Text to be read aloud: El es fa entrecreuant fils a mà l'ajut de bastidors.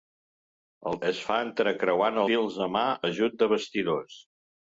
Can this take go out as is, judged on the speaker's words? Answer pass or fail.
pass